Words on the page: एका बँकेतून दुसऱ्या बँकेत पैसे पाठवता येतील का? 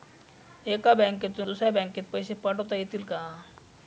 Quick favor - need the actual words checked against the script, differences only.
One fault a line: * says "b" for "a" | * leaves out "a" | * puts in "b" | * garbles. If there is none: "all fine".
all fine